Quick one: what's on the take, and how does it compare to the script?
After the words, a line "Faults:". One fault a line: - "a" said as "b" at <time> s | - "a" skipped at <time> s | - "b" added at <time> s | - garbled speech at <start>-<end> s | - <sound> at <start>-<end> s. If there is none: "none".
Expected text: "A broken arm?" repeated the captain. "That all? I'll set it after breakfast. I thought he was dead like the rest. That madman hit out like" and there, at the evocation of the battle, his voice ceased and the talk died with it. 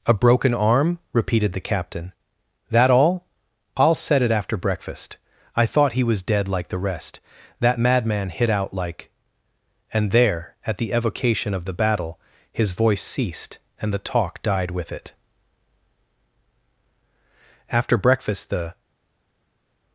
"A broken arm?" repeated the captain. "That all? I'll set it after breakfast. I thought he was dead like the rest. That madman hit out like" and there, at the evocation of the battle, his voice ceased and the talk died with it. After breakfast, the
Faults:
- "After breakfast the" added at 17.7 s